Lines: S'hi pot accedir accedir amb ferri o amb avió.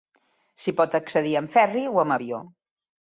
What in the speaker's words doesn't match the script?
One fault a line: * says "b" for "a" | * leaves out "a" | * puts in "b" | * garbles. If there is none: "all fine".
* leaves out "accedir"